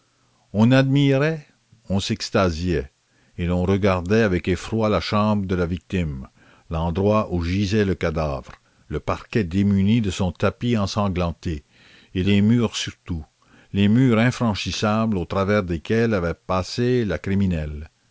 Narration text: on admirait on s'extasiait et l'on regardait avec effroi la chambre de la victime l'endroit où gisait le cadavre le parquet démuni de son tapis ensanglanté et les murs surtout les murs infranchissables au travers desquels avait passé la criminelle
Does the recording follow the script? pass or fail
pass